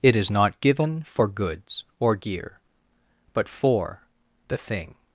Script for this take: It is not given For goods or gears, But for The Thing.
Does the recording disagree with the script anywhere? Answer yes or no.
yes